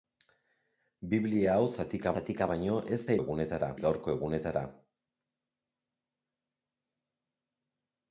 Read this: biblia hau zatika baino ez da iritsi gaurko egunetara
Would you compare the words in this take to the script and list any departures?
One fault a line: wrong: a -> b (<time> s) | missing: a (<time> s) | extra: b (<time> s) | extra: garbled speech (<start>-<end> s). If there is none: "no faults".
extra: zatika (2.2 s)
wrong: iritsi -> egunetara (3.2 s)